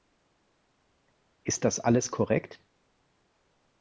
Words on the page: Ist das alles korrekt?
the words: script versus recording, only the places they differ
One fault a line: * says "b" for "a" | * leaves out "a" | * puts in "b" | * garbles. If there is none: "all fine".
all fine